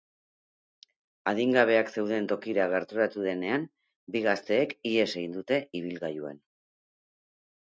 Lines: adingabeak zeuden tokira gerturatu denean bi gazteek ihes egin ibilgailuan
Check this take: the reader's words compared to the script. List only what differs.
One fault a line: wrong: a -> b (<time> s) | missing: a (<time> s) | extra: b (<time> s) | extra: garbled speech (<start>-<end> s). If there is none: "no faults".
extra: dute (5.4 s)